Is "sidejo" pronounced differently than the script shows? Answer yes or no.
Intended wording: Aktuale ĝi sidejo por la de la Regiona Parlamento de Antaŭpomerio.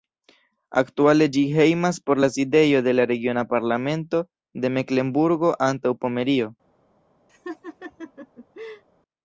yes